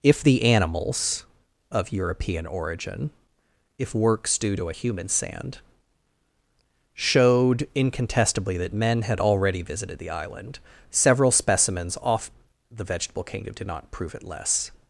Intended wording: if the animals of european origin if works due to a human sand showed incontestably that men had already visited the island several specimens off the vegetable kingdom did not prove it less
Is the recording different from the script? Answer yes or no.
no